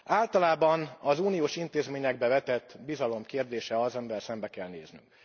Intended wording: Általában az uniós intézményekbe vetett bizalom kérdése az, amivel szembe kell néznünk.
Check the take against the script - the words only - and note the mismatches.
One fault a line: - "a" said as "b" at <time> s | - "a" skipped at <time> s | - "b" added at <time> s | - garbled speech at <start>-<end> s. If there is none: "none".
none